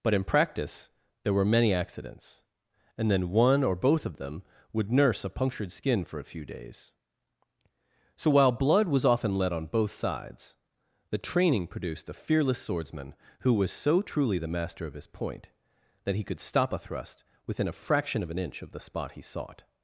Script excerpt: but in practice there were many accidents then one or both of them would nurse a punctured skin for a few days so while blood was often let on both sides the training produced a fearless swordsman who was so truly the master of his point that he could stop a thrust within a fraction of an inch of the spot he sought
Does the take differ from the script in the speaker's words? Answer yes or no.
yes